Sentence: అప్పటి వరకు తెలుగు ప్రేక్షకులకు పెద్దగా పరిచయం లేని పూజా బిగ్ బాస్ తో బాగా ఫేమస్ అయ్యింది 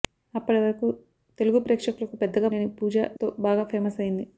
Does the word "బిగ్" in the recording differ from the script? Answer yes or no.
yes